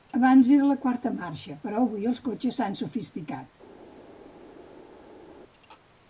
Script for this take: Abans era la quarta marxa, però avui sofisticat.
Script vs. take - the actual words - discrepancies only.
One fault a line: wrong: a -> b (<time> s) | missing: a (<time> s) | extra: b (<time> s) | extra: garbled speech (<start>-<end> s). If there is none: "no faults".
extra: els cotxes s'han (2.1 s)